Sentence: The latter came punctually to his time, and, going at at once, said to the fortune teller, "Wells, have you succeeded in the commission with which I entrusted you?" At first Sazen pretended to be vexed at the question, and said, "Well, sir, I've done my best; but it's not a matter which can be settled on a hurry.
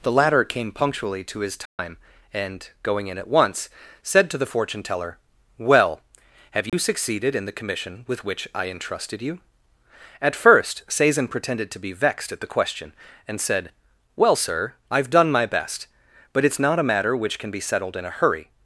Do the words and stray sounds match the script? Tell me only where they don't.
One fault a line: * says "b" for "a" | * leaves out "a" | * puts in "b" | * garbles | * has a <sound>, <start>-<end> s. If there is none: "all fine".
* has a dropout, 1.7-1.8 s
* says "in" for "at"
* says "Well" for "Wells"
* has a dropout, 6.7-6.7 s
* says "in" for "on"